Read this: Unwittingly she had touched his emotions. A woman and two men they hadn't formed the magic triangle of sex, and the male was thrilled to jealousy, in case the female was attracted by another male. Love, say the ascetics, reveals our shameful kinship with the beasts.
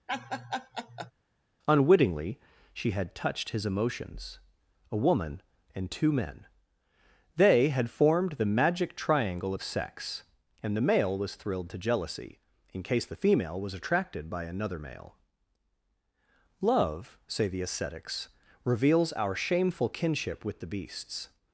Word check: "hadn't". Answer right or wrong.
wrong